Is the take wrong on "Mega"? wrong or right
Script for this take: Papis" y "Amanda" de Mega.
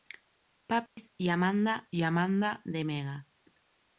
right